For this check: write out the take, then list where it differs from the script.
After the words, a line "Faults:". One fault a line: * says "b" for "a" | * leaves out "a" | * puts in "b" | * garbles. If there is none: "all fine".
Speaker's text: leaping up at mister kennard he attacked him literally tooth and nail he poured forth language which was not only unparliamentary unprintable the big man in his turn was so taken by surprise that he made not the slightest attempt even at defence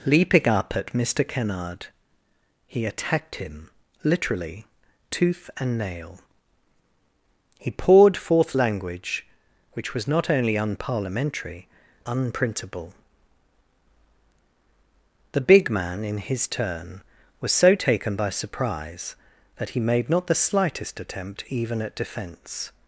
leaping up at mister kennard he attacked him literally tooth and nail he poured forth language which was not only unparliamentary unprintable the big man in his turn was so taken by surprise that he made not the slightest attempt even at defence
Faults:
all fine